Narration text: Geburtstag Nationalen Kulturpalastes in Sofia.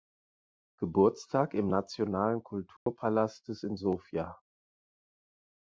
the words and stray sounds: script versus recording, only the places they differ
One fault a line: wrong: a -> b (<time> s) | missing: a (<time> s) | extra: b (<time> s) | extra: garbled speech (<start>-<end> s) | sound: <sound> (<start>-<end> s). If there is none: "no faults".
extra: im (1.5 s)
sound: dropout (2.8-2.9 s)